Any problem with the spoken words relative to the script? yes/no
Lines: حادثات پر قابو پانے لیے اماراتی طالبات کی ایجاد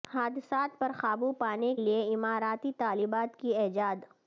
no